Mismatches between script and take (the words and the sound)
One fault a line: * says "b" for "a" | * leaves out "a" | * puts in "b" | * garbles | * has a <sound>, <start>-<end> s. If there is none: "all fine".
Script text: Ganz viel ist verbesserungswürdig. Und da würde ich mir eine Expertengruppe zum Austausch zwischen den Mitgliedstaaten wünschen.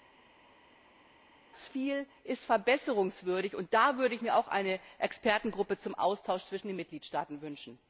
* puts in "auch"